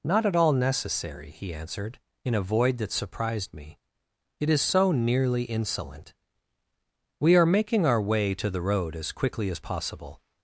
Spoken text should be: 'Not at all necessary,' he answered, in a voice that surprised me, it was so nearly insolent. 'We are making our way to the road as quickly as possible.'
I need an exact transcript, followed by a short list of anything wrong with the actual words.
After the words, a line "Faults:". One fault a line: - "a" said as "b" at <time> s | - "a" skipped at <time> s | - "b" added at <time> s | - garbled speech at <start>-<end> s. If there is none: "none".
'Not at all necessary,' he answered, in a void that surprised me, it is so nearly insolent. 'We are making our way to the road as quickly as possible.'
Faults:
- "voice" said as "void" at 2.4 s
- "was" said as "is" at 4.5 s